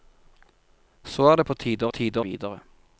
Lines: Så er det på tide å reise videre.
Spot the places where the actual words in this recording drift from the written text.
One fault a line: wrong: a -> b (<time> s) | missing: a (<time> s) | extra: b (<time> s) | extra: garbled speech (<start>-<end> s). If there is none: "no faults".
wrong: reise -> tide (1.9 s)